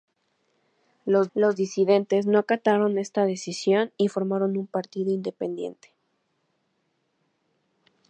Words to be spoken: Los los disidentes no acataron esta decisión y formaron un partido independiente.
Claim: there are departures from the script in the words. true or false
false